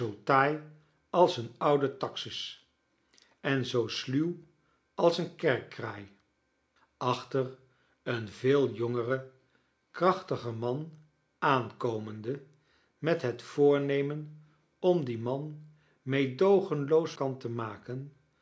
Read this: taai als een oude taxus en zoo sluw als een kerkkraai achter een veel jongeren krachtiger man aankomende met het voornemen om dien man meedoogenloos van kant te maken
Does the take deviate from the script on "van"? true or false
true